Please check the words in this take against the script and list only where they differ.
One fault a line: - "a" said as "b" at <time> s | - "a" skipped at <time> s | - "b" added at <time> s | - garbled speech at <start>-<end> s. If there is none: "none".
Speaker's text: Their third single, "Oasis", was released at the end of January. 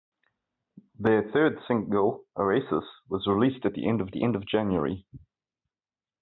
- "the end of" added at 4.1 s